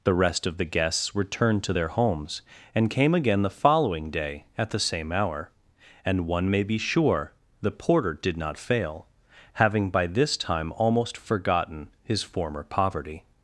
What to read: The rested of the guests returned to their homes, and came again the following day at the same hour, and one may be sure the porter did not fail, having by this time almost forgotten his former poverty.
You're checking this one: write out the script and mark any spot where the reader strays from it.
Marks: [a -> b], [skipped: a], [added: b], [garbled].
The [rested -> rest] of the guests returned to their homes, and came again the following day at the same hour, and one may be sure the porter did not fail, having by this time almost forgotten his former poverty.